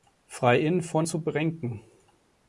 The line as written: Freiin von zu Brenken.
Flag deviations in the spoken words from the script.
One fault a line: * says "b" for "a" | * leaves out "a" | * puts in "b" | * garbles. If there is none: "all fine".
all fine